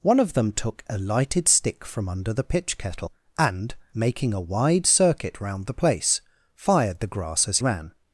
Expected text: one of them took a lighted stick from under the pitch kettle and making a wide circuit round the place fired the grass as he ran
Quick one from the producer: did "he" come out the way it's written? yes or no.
no